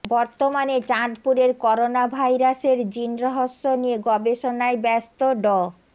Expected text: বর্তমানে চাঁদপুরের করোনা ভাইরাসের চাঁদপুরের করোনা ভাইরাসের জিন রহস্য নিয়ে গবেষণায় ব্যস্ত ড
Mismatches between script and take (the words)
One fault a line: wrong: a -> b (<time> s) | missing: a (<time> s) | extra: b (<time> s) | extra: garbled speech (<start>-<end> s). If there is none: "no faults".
missing: চাঁদপুরের করোনা ভাইরাসের (2.8 s)